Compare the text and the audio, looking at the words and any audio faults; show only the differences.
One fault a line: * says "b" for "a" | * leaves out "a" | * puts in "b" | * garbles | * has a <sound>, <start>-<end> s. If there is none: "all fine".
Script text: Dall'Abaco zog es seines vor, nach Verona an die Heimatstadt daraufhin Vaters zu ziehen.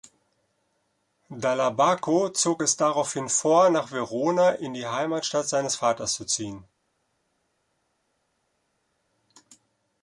* says "daraufhin" for "seines"
* says "in" for "an"
* says "seines" for "daraufhin"